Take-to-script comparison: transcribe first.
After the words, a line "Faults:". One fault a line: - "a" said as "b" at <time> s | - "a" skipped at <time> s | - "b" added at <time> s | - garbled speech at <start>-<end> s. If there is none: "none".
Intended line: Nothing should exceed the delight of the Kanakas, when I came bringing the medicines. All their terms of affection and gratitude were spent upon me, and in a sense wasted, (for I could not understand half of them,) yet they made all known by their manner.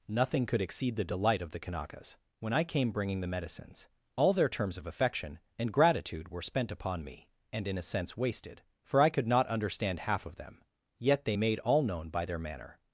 Nothing could exceed the delight of the Kanakas, when I came bringing the medicines. All their terms of affection and gratitude were spent upon me, and in a sense wasted, (for I could not understand half of them,) yet they made all known by their manner.
Faults:
- "should" said as "could" at 0.5 s